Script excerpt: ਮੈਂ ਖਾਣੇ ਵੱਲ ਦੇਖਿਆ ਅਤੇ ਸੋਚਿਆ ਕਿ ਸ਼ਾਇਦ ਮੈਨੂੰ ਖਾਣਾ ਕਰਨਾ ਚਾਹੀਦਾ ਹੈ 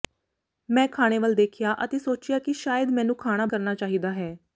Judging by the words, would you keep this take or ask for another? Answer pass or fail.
pass